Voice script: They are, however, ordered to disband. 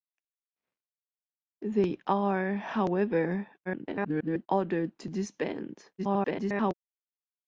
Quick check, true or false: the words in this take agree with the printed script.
false